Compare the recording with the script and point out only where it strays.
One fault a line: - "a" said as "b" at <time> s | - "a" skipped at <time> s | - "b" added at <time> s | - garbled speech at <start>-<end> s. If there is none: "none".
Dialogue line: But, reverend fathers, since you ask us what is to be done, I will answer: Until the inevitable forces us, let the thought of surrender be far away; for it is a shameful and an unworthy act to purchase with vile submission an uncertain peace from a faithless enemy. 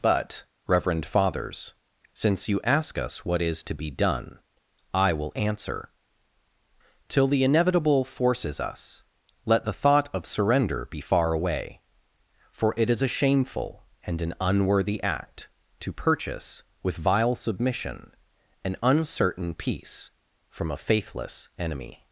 - "Until" said as "Till" at 7.1 s